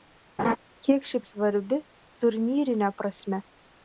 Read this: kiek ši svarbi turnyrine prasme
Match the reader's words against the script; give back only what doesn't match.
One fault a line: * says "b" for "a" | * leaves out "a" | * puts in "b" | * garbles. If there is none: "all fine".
all fine